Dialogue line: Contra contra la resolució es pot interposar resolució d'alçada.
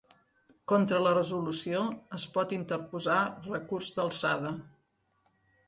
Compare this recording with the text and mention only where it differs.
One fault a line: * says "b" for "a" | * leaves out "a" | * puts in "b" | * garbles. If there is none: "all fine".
* leaves out "contra"
* says "recurs" for "resolució"